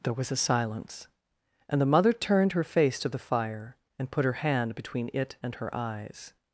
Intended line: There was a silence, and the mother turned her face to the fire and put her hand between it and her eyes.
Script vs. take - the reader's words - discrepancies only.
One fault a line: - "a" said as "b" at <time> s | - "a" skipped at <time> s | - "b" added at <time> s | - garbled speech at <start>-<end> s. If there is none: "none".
none